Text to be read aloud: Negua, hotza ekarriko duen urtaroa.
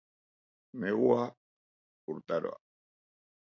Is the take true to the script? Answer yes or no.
no